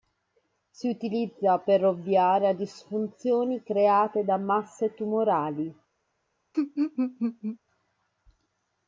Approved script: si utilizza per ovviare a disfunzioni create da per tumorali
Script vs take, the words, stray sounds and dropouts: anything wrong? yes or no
yes